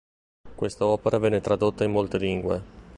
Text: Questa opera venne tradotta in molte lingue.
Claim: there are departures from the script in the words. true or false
false